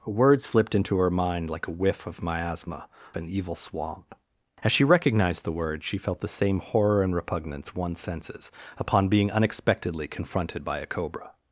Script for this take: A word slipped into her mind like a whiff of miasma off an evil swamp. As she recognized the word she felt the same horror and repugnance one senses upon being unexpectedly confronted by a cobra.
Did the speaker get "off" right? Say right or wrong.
wrong